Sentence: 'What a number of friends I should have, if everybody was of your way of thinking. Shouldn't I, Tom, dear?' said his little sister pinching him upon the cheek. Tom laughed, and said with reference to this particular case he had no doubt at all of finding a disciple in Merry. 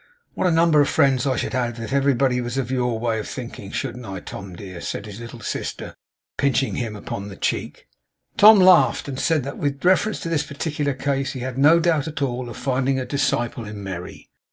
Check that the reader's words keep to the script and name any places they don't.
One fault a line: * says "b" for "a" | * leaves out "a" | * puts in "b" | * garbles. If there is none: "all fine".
* puts in "that"